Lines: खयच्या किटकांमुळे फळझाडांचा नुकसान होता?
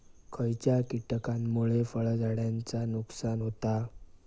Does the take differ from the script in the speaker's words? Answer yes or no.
no